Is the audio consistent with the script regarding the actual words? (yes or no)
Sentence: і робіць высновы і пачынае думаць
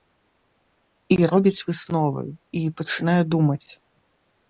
yes